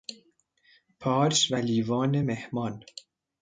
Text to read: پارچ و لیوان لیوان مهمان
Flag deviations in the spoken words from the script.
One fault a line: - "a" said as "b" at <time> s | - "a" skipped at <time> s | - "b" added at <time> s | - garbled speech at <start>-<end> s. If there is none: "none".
- "لیوان" skipped at 2.2 s